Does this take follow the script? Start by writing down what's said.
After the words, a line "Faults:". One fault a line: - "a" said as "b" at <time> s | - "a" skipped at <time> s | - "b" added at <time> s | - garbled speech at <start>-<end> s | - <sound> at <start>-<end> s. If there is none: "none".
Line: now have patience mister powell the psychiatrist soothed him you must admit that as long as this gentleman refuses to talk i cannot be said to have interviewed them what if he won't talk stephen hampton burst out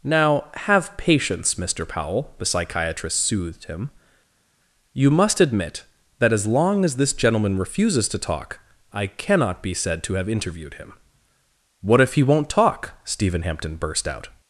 now have patience mister powell the psychiatrist soothed him you must admit that as long as this gentleman refuses to talk i cannot be said to have interviewed him what if he won't talk stephen hampton burst out
Faults:
- "them" said as "him" at 10.7 s